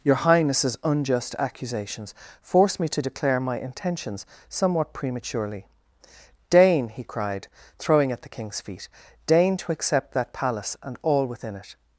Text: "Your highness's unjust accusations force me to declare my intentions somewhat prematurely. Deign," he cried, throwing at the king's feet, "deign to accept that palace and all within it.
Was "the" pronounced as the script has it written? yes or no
yes